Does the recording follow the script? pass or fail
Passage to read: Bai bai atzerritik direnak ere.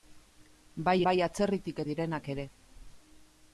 pass